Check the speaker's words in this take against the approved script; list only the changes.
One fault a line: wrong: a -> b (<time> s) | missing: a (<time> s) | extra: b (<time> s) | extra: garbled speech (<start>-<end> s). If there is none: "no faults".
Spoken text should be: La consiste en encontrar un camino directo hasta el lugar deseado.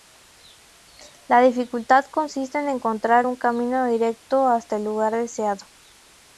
extra: dificultad (1.4 s)